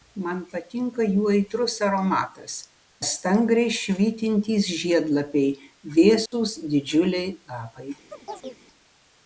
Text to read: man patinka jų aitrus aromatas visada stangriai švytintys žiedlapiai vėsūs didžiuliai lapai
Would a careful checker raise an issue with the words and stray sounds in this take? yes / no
yes